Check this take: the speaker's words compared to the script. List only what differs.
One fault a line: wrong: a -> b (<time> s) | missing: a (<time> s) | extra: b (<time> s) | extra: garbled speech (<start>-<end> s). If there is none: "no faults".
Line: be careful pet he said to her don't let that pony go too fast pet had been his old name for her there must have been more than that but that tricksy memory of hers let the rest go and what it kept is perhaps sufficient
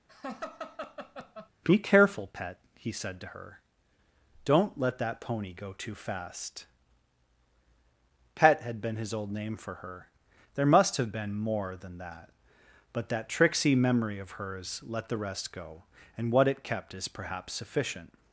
no faults